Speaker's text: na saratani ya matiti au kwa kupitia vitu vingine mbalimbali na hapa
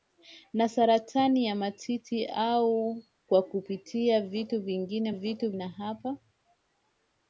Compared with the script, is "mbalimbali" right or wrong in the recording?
wrong